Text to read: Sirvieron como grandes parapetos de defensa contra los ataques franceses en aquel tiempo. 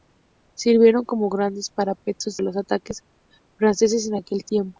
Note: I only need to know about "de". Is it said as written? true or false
false